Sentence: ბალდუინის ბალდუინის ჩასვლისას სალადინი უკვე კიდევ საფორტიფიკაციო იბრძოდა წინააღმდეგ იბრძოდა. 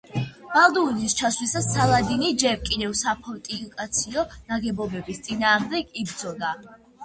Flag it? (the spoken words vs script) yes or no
yes